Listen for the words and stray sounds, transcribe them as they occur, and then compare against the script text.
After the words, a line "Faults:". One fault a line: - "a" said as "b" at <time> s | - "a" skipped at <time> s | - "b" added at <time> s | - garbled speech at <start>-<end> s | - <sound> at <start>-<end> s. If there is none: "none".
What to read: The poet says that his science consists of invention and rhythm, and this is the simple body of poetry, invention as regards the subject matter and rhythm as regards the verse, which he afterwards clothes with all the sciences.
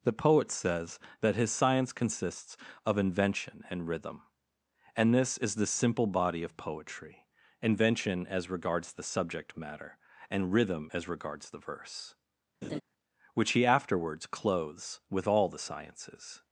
The poet says that his science consists of invention and rhythm, and this is the simple body of poetry, invention as regards the subject matter and rhythm as regards the verse, which he afterwards clothes with all the sciences.
Faults:
- laugh at 12.6-12.8 s